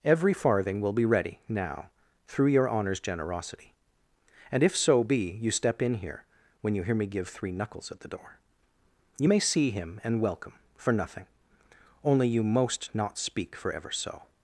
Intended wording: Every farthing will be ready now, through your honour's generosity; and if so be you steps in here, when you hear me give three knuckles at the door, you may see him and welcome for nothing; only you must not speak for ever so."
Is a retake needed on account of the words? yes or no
yes